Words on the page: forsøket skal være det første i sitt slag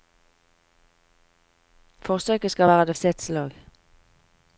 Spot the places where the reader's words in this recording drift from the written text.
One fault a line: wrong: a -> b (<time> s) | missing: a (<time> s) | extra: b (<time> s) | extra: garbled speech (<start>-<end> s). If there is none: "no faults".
missing: første (3.0 s)